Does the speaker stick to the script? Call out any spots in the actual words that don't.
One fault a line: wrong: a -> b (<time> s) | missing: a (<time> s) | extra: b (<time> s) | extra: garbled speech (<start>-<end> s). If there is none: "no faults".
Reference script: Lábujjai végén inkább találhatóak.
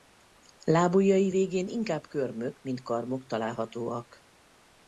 extra: körmök mint karmok (2.1 s)